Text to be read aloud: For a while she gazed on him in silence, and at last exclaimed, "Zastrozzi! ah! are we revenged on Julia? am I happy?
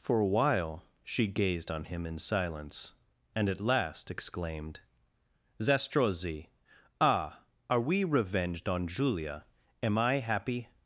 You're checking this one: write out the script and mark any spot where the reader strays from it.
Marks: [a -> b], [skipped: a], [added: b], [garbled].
For a while she gazed on him in silence, and at last exclaimed, "Zastrozzi! ah! are we revenged on Julia? am I happy?